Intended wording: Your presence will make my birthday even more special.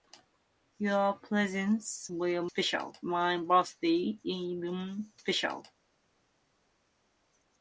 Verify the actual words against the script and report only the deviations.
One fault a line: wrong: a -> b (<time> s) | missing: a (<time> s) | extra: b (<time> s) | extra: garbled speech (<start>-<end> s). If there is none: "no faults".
wrong: make -> special (2.4 s)
missing: more (5.1 s)